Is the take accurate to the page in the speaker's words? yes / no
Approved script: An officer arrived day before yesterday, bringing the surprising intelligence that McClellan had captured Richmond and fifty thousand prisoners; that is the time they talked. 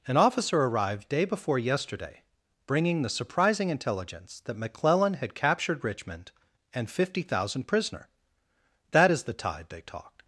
no